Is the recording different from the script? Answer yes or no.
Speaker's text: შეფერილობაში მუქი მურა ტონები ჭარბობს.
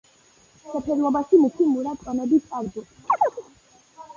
no